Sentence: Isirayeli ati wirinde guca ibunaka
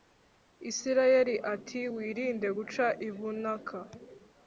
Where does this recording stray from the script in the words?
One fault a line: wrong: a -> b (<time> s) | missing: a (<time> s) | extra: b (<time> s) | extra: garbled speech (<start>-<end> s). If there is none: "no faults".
no faults